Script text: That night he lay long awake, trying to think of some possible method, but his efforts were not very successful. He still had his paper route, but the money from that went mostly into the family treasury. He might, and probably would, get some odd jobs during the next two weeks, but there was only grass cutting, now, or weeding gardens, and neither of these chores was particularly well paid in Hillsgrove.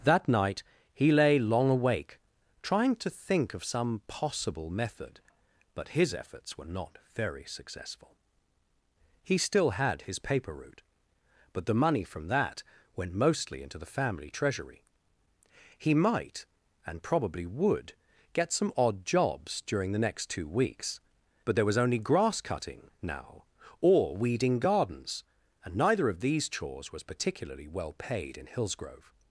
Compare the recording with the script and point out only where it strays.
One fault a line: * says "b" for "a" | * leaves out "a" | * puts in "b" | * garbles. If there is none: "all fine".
all fine